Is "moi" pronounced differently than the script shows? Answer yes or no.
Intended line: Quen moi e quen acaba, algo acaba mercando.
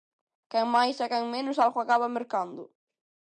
yes